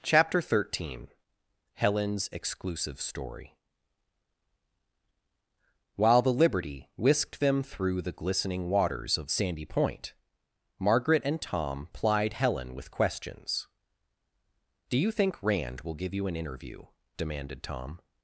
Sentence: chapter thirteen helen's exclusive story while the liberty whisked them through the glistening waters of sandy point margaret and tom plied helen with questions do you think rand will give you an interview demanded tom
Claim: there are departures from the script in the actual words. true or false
false